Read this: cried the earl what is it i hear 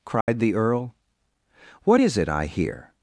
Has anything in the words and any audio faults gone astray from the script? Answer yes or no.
yes